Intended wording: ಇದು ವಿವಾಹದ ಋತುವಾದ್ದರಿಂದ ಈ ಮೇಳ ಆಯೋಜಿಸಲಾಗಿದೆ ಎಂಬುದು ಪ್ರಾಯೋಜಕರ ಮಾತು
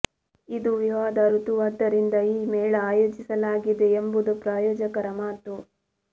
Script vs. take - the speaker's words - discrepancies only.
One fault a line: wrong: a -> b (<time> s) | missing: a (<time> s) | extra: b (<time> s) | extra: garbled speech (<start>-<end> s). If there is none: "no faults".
no faults